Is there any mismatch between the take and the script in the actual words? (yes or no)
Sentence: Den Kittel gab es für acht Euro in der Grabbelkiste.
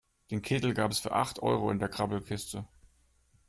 no